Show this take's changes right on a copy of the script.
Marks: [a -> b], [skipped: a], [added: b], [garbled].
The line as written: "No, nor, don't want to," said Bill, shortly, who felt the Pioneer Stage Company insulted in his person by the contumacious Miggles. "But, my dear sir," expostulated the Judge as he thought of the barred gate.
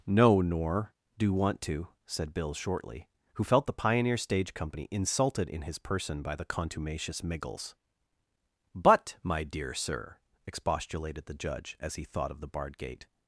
"No, nor, [don't -> do] want to," said Bill, shortly, who felt the Pioneer Stage Company insulted in his person by the contumacious Miggles. "But, my dear sir," expostulated the Judge as he thought of the barred gate.